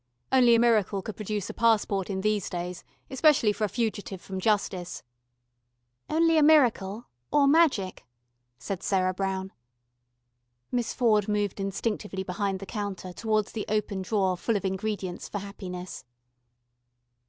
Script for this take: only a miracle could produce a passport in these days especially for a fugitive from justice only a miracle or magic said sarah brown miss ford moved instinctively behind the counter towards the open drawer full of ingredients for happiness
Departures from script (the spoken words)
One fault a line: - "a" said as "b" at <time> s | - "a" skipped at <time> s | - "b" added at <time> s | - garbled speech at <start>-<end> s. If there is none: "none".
none